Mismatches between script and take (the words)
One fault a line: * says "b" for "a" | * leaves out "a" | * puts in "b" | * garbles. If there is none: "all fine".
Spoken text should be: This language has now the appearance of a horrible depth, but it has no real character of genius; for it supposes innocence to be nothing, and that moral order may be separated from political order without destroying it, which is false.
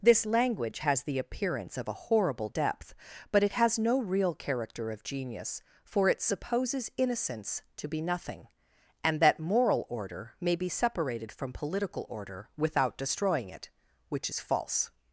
* leaves out "now"